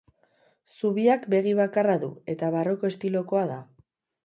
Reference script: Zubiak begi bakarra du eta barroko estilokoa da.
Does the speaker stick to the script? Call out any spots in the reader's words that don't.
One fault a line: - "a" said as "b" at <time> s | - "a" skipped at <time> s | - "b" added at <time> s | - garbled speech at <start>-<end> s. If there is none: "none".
none